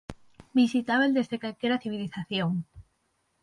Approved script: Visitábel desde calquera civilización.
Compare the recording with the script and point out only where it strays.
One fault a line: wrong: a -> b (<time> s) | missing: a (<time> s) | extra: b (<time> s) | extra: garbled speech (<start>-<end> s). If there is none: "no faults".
no faults